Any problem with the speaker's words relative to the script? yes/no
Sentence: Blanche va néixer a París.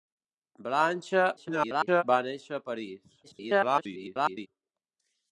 yes